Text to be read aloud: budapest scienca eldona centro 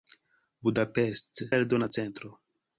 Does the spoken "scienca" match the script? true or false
false